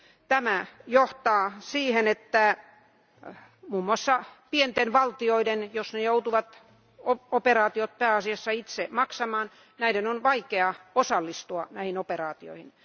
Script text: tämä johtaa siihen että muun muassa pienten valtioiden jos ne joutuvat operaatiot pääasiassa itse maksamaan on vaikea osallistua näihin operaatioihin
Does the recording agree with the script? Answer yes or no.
yes